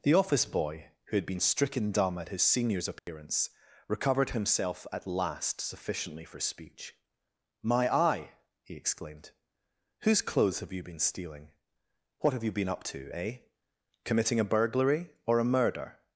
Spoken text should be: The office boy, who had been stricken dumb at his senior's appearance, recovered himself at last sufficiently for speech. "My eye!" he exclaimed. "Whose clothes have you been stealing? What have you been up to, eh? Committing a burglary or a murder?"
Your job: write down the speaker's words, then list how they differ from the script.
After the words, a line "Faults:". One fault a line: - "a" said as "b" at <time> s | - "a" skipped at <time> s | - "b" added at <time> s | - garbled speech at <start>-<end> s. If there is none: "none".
The office boy, who had been stricken dumb at his senior's appearance, recovered himself at last sufficiently for speech. "My eye!" he exclaimed. "Whose clothes have you been stealing? What have you been up to, eh? Committing a burglary or a murder?"
Faults:
none